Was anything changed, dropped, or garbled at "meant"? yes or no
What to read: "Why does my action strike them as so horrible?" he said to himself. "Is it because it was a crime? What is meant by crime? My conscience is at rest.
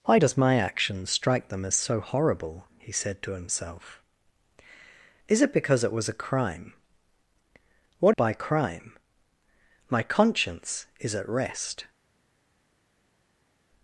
yes